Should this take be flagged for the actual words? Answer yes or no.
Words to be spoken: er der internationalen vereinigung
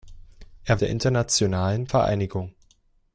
no